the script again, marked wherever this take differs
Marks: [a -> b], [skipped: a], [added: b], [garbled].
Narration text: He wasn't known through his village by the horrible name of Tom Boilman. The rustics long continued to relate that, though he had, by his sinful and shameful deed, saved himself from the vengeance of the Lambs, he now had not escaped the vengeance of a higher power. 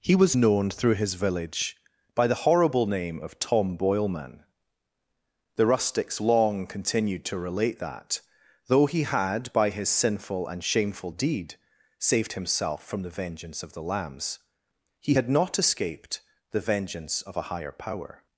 He [wasn't -> was] known through his village by the horrible name of Tom Boilman. The rustics long continued to relate that, though he had, by his sinful and shameful deed, saved himself from the vengeance of the Lambs, he [skipped: now] had not escaped the vengeance of a higher power.